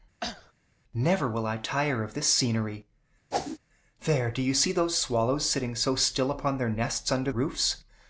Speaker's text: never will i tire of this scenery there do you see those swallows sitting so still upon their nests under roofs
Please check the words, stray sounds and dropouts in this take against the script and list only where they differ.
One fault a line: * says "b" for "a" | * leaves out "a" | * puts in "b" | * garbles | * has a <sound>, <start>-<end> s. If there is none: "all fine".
* has a cough, 0.2-0.5 s
* has a whoosh, 3.3-3.6 s